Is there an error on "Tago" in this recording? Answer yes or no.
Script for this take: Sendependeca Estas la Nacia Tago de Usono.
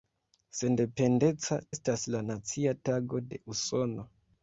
no